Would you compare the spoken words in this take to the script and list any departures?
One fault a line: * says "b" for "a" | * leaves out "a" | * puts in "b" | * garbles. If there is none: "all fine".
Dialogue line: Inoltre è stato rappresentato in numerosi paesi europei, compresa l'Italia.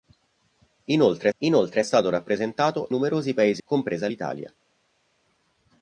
* puts in "inoltre"
* leaves out "in"
* leaves out "europei"